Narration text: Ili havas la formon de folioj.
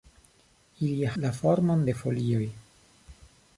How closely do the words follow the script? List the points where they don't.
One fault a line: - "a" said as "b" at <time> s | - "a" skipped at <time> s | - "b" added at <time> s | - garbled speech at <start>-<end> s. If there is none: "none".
- "havas" skipped at 1.1 s